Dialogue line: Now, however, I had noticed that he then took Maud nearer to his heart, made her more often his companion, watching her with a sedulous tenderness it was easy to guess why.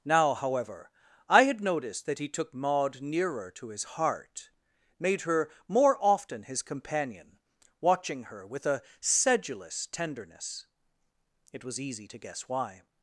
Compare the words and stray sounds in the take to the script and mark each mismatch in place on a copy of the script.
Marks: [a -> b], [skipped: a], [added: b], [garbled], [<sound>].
Now, however, I had noticed that he [skipped: then] took Maud nearer to his heart, made her more often his companion, watching her with a sedulous tenderness it was easy to guess why.